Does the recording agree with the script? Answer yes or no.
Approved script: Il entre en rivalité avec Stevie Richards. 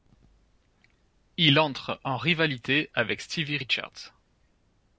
yes